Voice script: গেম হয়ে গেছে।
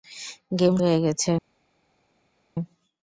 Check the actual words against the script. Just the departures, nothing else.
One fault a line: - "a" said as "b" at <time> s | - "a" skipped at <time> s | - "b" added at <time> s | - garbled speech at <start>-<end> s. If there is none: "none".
none